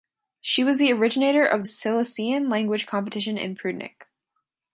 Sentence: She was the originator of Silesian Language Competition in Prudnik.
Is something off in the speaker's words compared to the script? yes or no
no